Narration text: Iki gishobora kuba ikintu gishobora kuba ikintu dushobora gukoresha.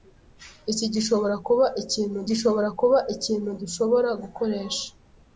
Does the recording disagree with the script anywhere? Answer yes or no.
no